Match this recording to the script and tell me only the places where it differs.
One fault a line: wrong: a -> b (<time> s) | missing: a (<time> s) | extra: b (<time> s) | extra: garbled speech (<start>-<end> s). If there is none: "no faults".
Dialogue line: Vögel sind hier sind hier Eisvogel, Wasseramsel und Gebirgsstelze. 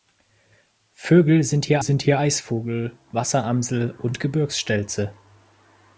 no faults